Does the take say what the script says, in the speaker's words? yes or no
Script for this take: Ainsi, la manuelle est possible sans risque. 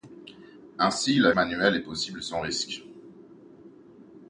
yes